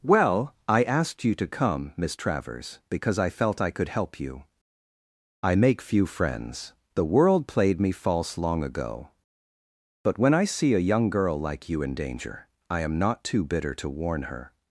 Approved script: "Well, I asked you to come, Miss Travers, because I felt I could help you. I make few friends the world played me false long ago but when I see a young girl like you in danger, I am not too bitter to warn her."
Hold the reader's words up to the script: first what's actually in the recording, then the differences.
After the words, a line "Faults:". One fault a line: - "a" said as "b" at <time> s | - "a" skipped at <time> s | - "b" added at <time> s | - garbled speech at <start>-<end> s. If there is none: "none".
"Well, I asked you to come, Miss Travers, because I felt I could help you. I make few friends the world played me false long ago but when I see a young girl like you in danger, I am not too bitter to warn her."
Faults:
none